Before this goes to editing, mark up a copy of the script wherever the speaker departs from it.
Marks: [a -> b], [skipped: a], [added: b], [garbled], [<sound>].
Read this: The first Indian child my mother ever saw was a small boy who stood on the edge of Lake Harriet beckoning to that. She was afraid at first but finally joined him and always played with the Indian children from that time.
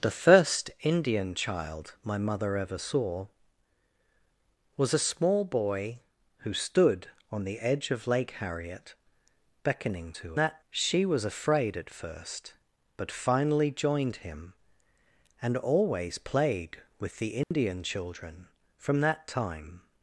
The first Indian child my mother ever saw was a small boy who stood on the edge of Lake Harriet beckoning to that. She was afraid at first but finally joined him and always played with the Indian [dropout] children from that time.